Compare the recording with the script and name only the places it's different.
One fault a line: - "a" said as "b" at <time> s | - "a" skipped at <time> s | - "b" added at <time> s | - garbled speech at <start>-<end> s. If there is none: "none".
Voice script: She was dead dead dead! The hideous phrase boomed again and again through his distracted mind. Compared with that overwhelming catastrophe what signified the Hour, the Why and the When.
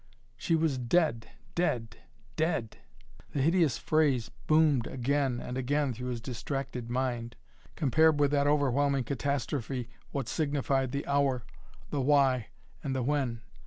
none